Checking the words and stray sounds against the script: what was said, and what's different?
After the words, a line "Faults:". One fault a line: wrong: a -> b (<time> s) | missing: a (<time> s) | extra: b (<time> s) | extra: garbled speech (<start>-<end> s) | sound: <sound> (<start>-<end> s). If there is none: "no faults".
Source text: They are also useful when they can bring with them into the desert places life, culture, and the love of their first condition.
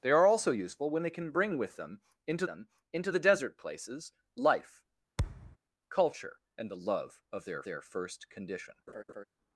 They are also useful when they can bring with them into them into the desert places life, culture, and the love of their their first condition.
Faults:
extra: them into (2.4 s)
sound: thud (5.2-5.6 s)
extra: their (7.6 s)
sound: laugh (8.9-9.2 s)